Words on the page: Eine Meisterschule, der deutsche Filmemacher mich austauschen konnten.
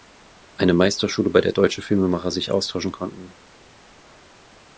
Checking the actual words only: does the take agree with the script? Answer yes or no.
no